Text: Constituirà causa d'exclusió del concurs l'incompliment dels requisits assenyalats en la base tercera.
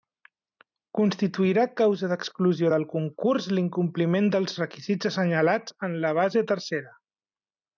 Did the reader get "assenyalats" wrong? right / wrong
right